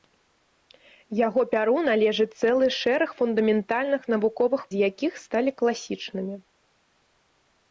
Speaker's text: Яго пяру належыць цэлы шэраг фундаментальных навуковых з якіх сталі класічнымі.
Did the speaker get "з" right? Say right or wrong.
right